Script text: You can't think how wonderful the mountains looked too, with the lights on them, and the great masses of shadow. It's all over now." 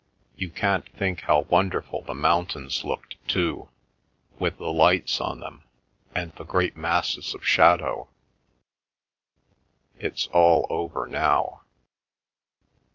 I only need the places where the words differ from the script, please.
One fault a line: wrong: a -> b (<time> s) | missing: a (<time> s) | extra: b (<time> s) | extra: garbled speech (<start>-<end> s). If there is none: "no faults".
no faults